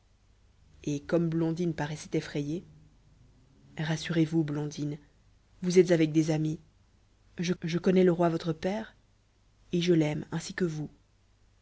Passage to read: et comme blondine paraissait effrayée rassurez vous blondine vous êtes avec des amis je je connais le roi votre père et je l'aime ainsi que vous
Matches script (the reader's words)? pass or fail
pass